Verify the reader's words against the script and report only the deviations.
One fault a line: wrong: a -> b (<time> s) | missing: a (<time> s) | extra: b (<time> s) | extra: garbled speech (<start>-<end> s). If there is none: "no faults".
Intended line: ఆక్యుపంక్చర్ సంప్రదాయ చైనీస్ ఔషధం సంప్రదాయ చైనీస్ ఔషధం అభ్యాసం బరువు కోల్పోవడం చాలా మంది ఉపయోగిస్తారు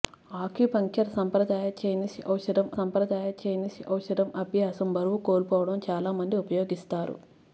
no faults